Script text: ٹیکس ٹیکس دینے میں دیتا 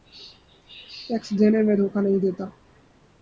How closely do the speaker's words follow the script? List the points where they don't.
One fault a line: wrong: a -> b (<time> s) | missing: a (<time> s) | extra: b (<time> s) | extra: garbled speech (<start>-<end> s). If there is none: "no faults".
missing: ٹیکس (1.3 s)
extra: دھوکہ نہیں (1.8 s)